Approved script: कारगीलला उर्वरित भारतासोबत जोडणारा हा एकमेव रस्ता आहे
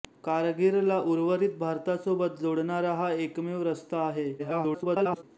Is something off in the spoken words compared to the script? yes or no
yes